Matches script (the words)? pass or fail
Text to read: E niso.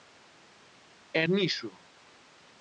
pass